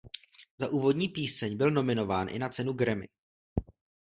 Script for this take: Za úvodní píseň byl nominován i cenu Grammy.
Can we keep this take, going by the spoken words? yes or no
no